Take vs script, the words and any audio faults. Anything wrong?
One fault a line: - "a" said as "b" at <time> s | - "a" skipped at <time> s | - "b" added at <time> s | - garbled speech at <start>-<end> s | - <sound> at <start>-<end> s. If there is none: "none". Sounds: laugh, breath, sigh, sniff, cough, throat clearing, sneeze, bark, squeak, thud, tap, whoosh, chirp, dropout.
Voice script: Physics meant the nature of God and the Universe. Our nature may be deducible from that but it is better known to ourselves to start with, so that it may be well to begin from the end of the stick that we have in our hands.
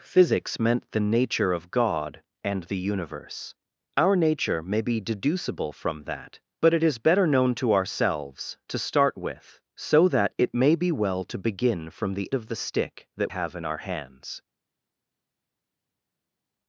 - "end" skipped at 12.3 s
- "we" skipped at 13.3 s